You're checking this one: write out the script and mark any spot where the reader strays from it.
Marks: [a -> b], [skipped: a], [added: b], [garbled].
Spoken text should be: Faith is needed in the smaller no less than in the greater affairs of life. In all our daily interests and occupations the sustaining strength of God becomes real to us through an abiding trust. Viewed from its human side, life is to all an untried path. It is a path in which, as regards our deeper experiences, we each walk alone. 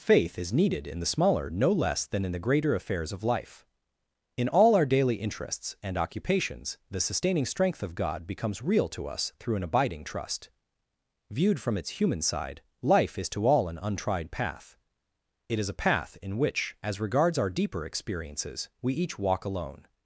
Faith is needed in the smaller no less than in the greater affairs of life. In all our daily interests and occupations the sustaining strength of God becomes real to us through an abiding trust. Viewed from its human side, life is to all an untried path. It is a path in which, as regards our deeper experiences, we each walk alone.